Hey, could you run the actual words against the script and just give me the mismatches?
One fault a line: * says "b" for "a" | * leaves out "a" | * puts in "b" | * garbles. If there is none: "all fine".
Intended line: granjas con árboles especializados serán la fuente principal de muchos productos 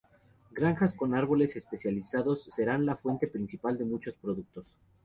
all fine